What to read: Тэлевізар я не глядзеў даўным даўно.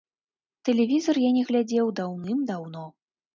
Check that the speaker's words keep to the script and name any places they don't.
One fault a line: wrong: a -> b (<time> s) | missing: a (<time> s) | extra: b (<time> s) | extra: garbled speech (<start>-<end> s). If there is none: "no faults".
no faults